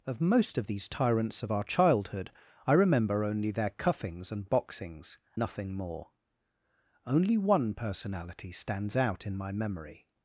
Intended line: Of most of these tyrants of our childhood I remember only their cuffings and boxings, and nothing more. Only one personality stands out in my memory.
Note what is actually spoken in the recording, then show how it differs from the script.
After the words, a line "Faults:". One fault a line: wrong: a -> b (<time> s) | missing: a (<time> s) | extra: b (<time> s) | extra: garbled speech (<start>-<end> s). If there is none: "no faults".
Of most of these tyrants of our childhood I remember only their cuffings and boxings, nothing more. Only one personality stands out in my memory.
Faults:
missing: and (5.2 s)